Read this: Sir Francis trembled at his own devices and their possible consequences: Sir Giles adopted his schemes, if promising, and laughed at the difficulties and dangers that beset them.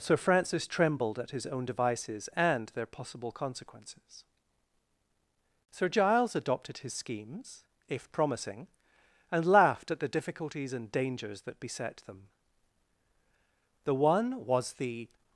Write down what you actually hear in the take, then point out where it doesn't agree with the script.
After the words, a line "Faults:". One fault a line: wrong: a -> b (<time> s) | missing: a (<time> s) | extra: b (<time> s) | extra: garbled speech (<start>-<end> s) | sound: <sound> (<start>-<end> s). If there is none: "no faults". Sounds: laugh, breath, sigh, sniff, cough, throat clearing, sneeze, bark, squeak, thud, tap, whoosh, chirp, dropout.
Sir Francis trembled at his own devices and their possible consequences: Sir Giles adopted his schemes, if promising, and laughed at the difficulties and dangers that beset them. The one was the
Faults:
extra: The one was the (13.8 s)